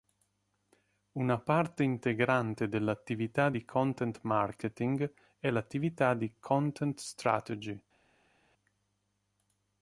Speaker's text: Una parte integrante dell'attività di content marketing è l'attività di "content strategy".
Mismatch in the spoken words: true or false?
false